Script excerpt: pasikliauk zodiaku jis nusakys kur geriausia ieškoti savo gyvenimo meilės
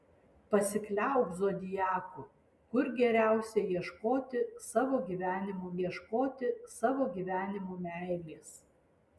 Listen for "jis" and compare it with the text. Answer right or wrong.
wrong